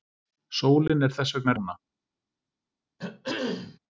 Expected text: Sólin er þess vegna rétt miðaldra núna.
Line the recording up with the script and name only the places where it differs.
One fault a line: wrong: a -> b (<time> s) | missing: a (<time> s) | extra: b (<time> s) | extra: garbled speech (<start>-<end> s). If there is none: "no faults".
missing: rétt miðaldra (1.6 s)